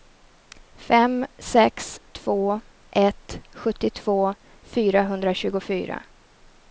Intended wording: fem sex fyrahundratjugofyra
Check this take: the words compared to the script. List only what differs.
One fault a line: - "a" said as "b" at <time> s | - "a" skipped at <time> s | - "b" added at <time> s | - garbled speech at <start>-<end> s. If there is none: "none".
- "två ett sjuttiotvå" added at 2.1 s